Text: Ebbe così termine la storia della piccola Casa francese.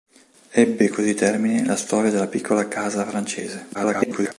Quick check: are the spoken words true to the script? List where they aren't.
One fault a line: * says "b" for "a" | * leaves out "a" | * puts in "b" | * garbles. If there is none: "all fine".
* garbles